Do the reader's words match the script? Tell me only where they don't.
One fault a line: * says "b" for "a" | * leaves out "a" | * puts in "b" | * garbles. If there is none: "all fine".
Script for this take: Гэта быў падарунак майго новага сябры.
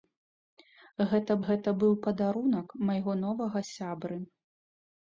* puts in "гэта"